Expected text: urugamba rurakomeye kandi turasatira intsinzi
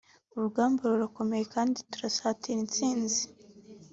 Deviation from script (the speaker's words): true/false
false